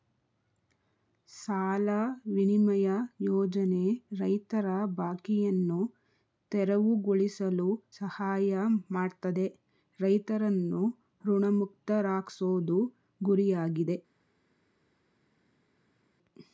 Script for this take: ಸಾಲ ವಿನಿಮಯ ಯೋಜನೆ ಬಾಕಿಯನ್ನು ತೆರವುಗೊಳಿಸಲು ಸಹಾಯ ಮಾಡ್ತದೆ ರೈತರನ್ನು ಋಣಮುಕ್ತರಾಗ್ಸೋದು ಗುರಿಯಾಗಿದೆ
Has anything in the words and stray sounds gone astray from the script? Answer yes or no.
yes